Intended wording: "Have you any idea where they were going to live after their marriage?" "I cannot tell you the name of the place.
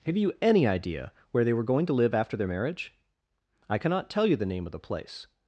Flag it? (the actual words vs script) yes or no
no